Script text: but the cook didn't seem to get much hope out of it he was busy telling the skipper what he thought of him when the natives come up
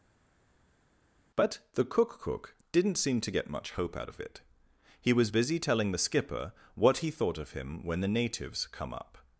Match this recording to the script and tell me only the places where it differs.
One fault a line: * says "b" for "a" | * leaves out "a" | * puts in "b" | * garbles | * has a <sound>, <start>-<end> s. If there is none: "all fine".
* puts in "cook"